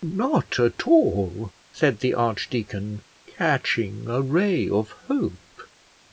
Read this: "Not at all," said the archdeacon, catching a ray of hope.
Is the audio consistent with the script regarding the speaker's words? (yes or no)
yes